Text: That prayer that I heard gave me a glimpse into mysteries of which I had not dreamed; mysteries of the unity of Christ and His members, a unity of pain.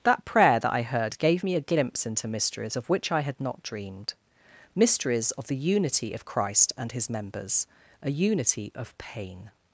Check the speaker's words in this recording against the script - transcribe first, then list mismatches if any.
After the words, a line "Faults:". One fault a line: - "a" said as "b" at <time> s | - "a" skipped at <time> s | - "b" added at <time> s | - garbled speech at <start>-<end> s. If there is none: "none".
That prayer that I heard gave me a glimpse into mysteries of which I had not dreamed; mysteries of the unity of Christ and His members, a unity of pain.
Faults:
none